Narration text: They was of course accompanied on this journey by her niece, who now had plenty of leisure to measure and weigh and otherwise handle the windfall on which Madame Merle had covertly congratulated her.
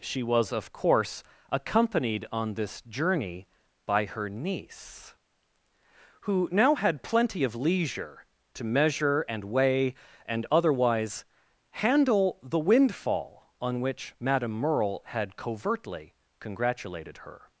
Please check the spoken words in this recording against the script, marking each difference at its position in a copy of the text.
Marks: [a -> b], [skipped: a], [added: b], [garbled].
[They -> She] was of course accompanied on this journey by her niece, who now had plenty of leisure to measure and weigh and otherwise handle the windfall on which Madame Merle had covertly congratulated her.